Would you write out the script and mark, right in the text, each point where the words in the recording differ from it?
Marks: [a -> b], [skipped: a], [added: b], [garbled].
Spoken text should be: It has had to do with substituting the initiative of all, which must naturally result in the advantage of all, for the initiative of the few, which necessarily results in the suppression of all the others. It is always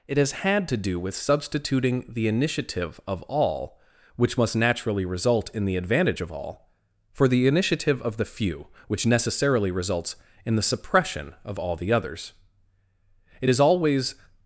It has had to do with substituting the initiative of all, which must naturally result in the advantage of all, for the initiative of the few, which necessarily results in the suppression of all the others. It is always